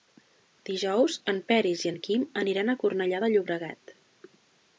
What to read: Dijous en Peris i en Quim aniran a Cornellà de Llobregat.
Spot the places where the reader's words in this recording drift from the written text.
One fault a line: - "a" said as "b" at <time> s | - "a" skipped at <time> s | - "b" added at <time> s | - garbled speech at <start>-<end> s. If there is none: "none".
none